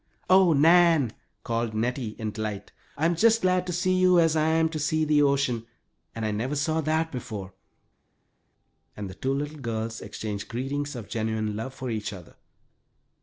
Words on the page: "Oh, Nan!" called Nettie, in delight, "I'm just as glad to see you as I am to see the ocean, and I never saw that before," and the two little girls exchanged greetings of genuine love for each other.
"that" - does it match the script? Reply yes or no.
yes